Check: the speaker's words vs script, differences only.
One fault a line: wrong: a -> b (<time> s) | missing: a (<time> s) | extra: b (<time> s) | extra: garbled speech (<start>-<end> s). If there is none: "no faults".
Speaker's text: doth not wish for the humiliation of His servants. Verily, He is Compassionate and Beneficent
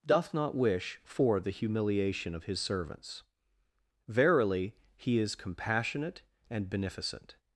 no faults